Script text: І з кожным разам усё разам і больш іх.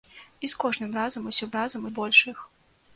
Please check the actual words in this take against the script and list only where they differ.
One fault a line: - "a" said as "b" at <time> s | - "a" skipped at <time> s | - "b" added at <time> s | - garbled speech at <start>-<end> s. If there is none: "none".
none